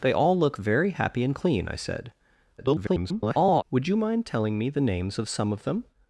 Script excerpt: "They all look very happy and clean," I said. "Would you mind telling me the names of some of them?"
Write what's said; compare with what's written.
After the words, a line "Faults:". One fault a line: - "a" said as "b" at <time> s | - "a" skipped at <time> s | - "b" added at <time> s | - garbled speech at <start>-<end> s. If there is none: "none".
"They all look very happy and clean," I said. [garbled] "Would you mind telling me the names of some of them?"
Faults:
- garbled speech at 2.6-3.6 s